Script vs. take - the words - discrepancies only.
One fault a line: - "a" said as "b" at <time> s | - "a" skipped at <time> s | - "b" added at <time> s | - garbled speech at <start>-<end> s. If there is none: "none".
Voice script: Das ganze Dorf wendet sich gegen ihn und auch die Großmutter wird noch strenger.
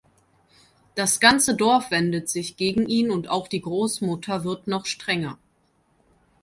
none